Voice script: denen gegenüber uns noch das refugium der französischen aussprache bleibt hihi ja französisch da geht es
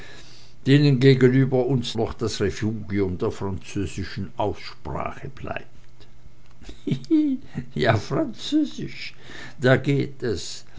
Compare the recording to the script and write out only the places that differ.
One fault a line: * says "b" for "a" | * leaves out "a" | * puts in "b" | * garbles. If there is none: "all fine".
all fine